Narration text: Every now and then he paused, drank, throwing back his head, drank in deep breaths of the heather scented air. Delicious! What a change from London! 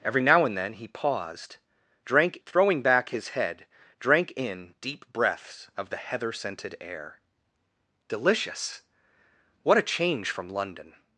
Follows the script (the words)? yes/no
yes